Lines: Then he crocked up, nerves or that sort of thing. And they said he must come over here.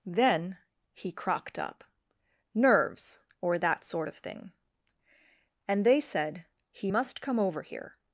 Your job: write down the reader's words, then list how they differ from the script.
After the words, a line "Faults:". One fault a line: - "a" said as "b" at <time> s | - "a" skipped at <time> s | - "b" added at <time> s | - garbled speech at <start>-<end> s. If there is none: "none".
Then he crocked up, nerves or that sort of thing. And they said he must come over here.
Faults:
none